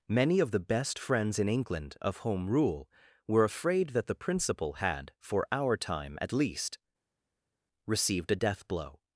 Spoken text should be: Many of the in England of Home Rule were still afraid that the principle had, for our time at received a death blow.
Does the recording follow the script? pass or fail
fail